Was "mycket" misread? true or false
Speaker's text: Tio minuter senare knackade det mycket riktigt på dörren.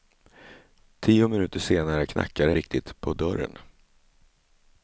true